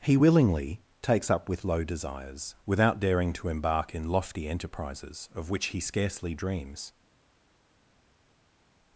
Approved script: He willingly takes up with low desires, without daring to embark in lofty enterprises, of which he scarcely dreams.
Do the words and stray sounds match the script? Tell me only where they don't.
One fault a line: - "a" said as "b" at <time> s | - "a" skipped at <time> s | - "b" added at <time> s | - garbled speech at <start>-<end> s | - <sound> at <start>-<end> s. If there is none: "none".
none